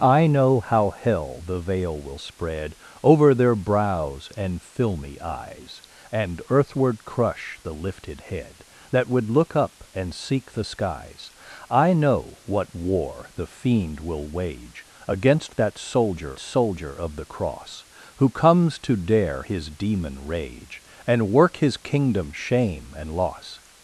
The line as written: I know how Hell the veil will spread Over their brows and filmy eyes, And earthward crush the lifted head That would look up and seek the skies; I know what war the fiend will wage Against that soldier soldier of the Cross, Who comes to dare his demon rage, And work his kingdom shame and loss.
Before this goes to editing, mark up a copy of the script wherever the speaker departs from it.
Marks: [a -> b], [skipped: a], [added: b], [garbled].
I know how Hell the veil will spread Over their brows and filmy eyes, And earthward crush the lifted head That would look up and seek the skies; I know what war the fiend will wage Against that soldier soldier of the Cross, Who comes to dare his demon rage, And work his kingdom shame and loss.